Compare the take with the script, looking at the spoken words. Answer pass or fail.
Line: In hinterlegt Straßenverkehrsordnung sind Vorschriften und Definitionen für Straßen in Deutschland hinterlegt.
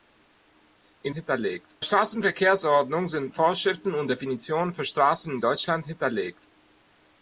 pass